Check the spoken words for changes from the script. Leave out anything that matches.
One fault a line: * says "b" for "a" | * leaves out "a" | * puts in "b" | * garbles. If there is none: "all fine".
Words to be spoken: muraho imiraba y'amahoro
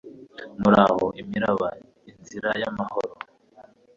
* puts in "inzira"